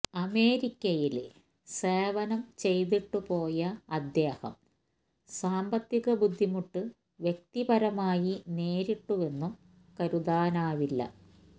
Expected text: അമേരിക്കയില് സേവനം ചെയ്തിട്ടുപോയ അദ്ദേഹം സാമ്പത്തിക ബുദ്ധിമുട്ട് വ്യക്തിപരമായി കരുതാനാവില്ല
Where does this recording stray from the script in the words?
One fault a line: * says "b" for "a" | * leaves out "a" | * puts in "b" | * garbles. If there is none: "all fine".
* puts in "നേരിട്ടുവെന്നും"